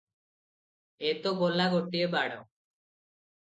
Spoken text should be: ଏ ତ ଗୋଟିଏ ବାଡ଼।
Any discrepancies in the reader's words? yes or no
yes